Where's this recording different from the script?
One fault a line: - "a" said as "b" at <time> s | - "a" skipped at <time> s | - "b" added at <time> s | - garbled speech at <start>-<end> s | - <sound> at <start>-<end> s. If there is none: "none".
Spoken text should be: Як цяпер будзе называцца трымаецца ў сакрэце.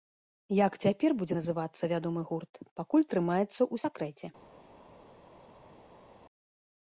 - "вядомы гурт пакуль" added at 2.0 s